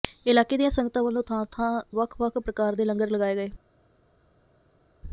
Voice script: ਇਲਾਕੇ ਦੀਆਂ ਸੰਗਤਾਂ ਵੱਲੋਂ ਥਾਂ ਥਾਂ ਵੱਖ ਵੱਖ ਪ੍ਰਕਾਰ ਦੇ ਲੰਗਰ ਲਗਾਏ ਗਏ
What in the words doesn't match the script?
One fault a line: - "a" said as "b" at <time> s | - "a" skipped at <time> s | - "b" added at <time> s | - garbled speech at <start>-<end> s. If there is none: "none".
none